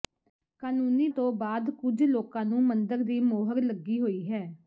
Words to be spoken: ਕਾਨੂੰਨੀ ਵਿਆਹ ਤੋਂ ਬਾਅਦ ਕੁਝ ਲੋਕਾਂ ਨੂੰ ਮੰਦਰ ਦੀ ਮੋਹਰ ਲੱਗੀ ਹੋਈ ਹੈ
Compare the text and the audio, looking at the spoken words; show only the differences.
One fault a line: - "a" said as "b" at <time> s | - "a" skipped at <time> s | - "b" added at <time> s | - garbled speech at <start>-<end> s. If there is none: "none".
- "ਵਿਆਹ" skipped at 1.1 s